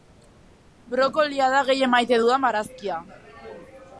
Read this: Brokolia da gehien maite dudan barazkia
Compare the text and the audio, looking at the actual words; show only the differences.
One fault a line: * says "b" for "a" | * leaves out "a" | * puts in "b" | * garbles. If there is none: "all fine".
all fine